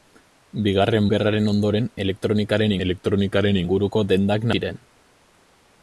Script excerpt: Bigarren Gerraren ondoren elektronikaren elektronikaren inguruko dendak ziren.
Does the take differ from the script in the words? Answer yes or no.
no